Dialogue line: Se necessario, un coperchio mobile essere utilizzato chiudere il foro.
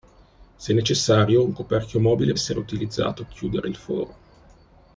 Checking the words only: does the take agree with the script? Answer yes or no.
yes